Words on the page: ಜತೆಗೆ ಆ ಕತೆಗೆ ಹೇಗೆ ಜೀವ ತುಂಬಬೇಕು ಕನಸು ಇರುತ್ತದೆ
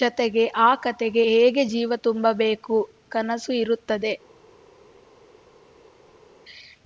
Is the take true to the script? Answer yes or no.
yes